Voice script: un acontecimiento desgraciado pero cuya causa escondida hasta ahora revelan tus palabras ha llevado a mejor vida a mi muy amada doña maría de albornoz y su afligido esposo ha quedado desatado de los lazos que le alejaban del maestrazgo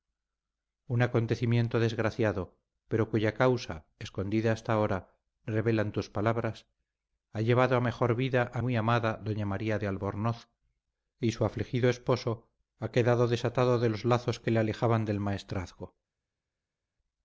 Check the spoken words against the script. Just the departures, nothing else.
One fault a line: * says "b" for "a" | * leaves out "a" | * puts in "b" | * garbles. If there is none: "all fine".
* leaves out "mi"